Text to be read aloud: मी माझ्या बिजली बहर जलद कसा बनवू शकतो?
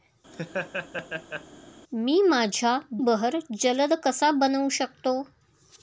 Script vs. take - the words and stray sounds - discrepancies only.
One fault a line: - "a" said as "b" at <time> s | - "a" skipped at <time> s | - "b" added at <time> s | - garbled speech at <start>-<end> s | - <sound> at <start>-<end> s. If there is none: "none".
- laugh at 0.3-1.5 s
- "बिजली" skipped at 2.8 s